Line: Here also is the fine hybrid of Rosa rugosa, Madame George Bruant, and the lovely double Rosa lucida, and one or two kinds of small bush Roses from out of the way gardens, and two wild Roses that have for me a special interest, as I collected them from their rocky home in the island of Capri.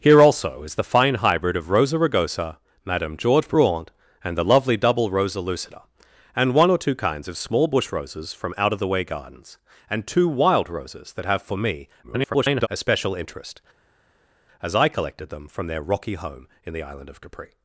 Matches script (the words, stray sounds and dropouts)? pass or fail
fail